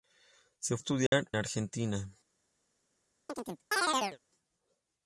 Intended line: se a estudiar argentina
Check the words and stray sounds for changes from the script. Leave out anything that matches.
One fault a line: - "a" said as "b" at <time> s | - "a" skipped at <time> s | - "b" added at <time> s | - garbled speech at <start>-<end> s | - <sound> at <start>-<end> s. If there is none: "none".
- dropout at 1.1-1.1 s
- chirp at 3.3-4.2 s